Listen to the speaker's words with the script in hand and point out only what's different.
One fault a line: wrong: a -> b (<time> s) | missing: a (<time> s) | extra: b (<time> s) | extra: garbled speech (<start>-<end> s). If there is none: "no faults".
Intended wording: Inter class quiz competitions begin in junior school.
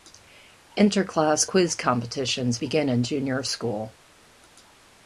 no faults